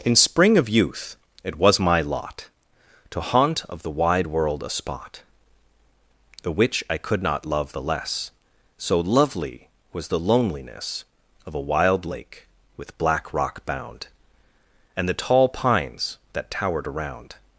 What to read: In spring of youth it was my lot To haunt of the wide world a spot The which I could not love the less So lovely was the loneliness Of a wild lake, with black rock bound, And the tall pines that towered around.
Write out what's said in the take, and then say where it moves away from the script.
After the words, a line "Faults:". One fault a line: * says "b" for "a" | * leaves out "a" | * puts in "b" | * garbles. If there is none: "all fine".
In spring of youth it was my lot To haunt of the wide world a spot The which I could not love the less So lovely was the loneliness Of a wild lake, with black rock bound, And the tall pines that towered around.
Faults:
all fine